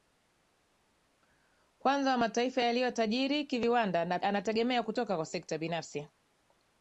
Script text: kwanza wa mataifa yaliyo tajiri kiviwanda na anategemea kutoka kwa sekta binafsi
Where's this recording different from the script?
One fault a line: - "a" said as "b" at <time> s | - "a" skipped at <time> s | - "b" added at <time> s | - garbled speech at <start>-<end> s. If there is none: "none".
none